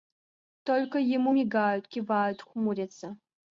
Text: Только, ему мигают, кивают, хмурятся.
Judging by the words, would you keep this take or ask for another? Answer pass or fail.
pass